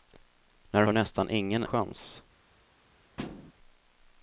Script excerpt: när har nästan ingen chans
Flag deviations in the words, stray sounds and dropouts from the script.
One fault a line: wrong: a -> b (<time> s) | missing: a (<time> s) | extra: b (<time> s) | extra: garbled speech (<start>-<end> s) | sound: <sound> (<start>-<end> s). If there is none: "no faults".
sound: thud (3.2-3.5 s)